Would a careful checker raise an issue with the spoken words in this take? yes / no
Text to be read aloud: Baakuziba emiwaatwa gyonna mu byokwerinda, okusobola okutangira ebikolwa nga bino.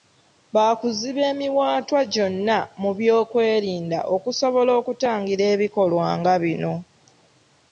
no